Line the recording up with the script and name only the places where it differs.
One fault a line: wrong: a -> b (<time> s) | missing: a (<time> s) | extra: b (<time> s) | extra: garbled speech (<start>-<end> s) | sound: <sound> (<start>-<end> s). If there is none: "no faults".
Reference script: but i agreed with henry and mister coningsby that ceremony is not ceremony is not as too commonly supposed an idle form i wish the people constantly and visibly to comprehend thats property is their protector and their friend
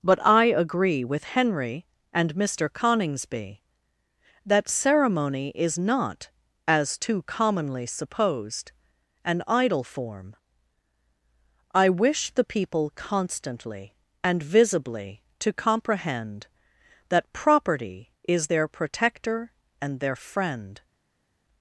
wrong: agreed -> agree (0.5 s)
missing: ceremony is not (6.3 s)
wrong: thats -> that (17.1 s)